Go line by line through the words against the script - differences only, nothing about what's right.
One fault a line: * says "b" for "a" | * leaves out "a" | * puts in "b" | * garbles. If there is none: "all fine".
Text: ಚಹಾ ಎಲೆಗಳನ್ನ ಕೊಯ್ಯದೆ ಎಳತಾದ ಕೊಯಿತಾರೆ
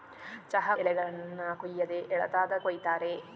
all fine